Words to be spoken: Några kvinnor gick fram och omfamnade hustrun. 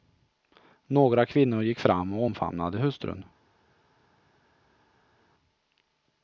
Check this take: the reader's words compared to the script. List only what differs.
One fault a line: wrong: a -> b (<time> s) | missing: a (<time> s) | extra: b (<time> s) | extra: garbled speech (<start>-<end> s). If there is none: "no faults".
no faults